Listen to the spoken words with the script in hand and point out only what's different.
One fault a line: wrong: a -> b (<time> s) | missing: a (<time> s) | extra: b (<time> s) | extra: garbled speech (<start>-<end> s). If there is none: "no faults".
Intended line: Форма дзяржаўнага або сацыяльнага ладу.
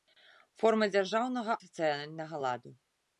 missing: або (1.5 s)